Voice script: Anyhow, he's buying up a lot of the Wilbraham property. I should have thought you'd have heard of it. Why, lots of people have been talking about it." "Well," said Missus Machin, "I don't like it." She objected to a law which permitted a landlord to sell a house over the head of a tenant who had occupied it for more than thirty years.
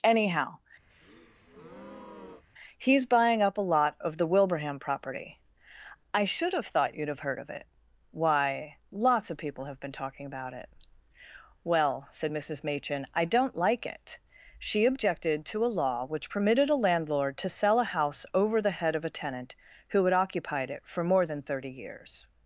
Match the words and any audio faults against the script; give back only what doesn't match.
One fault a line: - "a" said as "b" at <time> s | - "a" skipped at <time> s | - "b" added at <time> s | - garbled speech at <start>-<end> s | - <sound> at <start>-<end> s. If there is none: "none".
- breath at 0.9-2.4 s